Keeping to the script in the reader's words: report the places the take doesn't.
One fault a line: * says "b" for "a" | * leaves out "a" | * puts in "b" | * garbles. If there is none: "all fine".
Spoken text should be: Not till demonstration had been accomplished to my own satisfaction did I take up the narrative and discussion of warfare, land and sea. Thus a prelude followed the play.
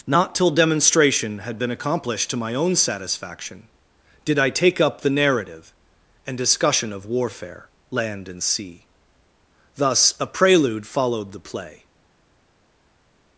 all fine